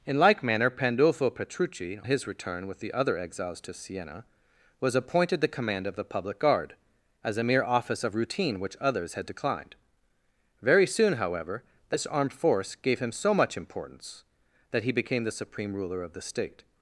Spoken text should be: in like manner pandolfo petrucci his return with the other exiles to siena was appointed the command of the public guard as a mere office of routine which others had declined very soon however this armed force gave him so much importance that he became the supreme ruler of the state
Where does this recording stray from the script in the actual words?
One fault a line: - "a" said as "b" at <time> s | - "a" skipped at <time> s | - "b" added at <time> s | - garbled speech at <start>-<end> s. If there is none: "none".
none